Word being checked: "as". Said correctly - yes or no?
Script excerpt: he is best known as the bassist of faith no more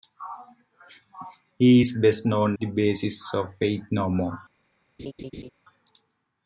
no